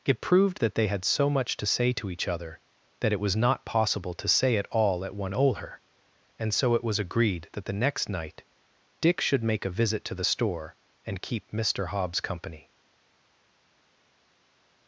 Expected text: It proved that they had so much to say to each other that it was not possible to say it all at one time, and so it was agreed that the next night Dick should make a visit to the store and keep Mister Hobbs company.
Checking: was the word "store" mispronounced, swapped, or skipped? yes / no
no